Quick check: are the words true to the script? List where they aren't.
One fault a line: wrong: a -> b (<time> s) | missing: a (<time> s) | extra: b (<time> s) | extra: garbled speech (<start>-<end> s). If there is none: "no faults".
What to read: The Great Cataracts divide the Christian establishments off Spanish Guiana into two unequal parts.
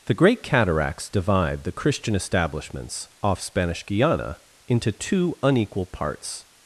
no faults